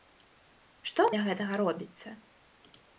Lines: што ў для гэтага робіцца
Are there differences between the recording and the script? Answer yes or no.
no